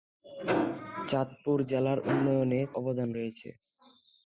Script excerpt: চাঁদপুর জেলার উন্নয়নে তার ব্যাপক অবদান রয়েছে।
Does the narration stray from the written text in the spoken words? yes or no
yes